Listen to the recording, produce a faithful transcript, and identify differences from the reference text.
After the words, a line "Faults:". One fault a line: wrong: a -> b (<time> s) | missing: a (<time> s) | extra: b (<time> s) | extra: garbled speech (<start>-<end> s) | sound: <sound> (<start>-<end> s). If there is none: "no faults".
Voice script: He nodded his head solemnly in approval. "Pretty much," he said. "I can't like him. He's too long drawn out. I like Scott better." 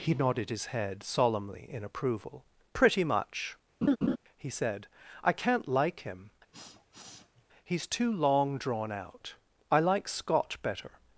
He nodded his head solemnly in approval. "Pretty much," he said. "I can't like him. He's too long drawn out. I like Scott better."
Faults:
sound: laugh (3.8-4.2 s)
sound: sniff (6.5-7.5 s)